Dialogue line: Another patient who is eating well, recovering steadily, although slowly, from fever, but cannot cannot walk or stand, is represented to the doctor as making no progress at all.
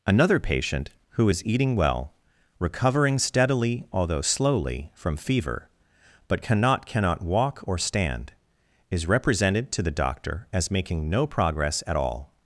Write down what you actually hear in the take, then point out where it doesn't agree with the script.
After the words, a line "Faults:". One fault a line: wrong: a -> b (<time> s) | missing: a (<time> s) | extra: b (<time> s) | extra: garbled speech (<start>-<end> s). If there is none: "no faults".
Another patient who is eating well, recovering steadily, although slowly, from fever, but cannot cannot walk or stand, is represented to the doctor as making no progress at all.
Faults:
no faults